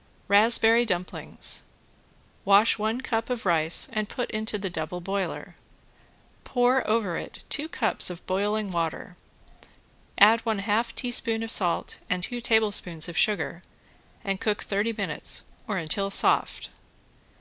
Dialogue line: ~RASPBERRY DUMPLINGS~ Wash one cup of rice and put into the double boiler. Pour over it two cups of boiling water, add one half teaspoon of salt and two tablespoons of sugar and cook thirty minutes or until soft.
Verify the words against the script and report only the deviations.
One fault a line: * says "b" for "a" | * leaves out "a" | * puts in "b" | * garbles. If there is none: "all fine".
all fine